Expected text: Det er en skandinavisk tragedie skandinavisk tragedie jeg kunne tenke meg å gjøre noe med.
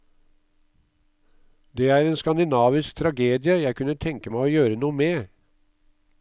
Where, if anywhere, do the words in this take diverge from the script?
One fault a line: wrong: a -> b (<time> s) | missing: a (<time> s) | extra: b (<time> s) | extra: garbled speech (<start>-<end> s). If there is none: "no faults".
missing: skandinavisk tragedie (3.6 s)